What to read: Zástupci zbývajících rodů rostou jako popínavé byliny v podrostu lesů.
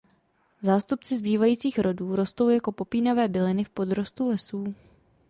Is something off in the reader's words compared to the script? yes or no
no